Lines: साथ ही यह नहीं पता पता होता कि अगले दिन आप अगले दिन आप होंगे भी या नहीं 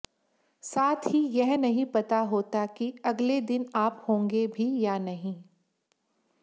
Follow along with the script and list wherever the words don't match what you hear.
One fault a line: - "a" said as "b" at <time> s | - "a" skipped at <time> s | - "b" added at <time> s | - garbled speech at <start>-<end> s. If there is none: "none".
- "पता" skipped at 2.2 s
- "अगले दिन आप" skipped at 4.0 s